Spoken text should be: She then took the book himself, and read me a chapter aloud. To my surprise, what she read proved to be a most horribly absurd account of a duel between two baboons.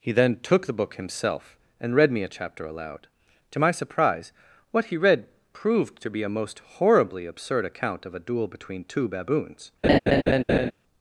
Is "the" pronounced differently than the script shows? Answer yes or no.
no